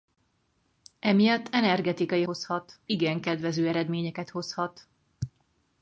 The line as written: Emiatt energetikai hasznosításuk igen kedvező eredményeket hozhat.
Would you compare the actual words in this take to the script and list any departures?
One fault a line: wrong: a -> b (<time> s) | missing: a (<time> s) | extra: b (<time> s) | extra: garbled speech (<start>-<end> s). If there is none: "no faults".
wrong: hasznosításuk -> hozhat (2.2 s)